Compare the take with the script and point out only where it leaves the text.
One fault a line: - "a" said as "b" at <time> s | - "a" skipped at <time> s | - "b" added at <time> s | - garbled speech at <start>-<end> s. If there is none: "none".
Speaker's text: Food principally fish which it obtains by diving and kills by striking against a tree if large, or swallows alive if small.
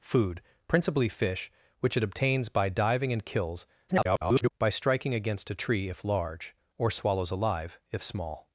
- garbled speech at 3.9-4.5 s